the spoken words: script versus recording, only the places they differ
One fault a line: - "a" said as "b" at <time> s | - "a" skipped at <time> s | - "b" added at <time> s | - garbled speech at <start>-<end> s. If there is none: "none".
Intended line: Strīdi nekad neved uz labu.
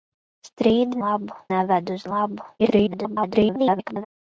- "nekad" said as "labu" at 1.1 s
- garbled speech at 2.6-4.1 s